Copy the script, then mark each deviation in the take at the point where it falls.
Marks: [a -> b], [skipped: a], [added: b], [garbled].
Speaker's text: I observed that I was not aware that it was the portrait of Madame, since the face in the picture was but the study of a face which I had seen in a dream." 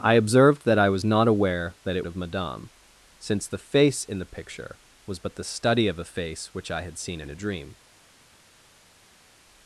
I observed that I was not aware that it [skipped: was the portrait] of Madame, since the face in the picture was but the study of a face which I had seen in a dream."